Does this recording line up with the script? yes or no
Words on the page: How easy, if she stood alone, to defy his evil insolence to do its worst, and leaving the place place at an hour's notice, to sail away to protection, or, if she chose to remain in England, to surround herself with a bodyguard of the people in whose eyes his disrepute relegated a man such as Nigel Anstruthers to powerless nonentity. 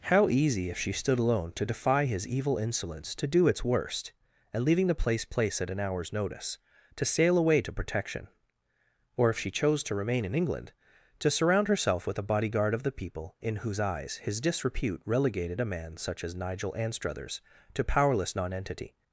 yes